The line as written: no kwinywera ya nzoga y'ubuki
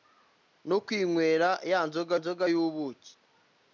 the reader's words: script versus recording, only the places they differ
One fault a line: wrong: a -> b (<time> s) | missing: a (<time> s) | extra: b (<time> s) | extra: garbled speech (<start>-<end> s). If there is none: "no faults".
extra: nzoga (2.2 s)